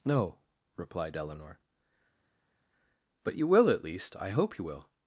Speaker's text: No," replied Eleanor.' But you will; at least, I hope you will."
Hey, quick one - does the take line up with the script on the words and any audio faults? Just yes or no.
yes